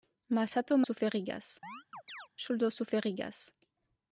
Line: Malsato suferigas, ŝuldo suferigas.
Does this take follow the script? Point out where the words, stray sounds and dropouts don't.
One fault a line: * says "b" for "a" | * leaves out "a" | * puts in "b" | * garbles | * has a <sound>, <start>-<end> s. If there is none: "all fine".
* has a chirp, 1.6-2.3 s